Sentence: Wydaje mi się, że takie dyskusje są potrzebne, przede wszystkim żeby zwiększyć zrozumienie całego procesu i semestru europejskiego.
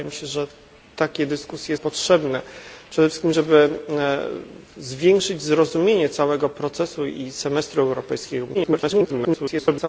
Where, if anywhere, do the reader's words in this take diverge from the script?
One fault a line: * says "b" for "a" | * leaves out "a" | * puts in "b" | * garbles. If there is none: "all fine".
* leaves out "są"
* garbles